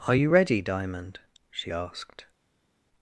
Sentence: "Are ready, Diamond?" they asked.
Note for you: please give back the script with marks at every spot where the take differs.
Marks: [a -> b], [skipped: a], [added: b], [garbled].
"Are [added: you] ready, Diamond?" [they -> she] asked.